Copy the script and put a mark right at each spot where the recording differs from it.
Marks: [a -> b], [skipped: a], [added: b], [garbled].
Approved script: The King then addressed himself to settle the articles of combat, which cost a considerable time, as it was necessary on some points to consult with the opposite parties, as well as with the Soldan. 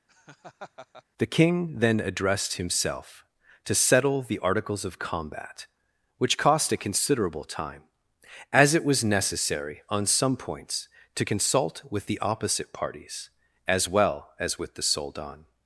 The King then addressed himself to settle the articles of combat, which cost a considerable time, as it was necessary on some points to consult with the opposite parties, as well as with the Soldan.